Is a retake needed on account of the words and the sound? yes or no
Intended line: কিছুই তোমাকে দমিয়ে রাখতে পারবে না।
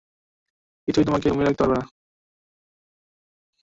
no